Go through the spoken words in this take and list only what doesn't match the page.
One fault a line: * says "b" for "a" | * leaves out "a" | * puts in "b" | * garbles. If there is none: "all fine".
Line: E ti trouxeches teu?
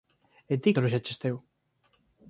all fine